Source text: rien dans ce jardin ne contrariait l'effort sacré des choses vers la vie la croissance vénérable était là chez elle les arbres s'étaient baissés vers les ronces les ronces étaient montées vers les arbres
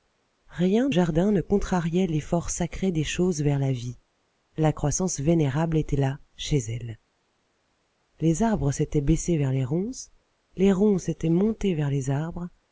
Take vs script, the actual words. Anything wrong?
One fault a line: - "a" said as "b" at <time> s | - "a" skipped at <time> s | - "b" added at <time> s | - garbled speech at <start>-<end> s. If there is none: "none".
- "dans ce" skipped at 0.9 s